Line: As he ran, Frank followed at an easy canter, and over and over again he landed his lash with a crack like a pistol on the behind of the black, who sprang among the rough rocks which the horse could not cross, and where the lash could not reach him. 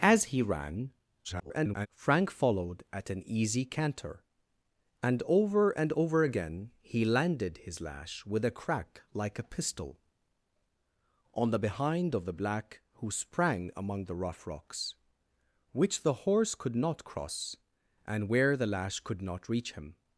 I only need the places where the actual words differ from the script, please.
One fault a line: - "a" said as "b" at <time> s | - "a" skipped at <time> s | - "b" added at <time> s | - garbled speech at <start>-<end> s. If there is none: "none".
- garbled speech at 1.2-1.9 s